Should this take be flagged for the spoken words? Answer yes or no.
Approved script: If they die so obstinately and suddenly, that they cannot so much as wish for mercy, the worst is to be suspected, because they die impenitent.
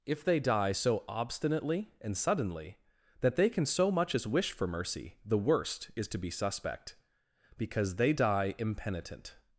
yes